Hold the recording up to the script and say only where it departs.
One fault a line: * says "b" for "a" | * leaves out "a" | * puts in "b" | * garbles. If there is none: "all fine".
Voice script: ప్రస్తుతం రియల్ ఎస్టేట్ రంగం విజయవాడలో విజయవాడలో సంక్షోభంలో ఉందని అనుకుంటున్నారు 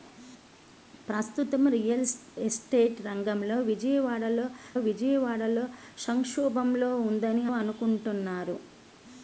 all fine